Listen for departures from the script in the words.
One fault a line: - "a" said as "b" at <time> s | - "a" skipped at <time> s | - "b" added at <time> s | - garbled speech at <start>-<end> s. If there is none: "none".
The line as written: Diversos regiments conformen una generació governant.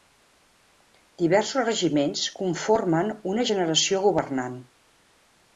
none